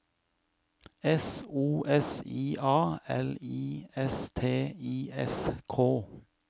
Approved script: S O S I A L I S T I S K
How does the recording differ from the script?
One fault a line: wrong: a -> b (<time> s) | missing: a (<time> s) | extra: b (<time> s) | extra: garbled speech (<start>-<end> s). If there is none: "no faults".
no faults